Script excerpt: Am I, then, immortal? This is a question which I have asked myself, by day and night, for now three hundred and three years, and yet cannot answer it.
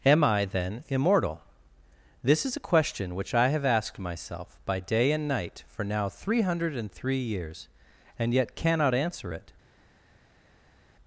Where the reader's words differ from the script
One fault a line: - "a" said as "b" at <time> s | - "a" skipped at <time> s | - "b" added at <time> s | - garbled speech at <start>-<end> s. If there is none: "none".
none